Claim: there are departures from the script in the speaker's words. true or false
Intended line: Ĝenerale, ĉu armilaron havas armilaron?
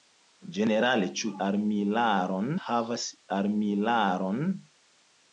false